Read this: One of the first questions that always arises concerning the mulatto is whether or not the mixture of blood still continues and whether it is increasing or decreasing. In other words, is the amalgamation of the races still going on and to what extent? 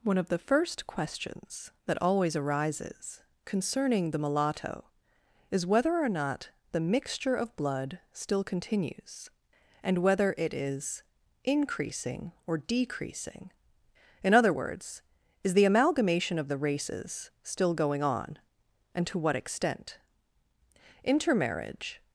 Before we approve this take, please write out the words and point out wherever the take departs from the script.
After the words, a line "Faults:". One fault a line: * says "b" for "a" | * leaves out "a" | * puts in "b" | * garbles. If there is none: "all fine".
One of the first questions that always arises concerning the mulatto is whether or not the mixture of blood still continues and whether it is increasing or decreasing. In other words, is the amalgamation of the races still going on and to what extent? Intermarriage
Faults:
* puts in "Intermarriage"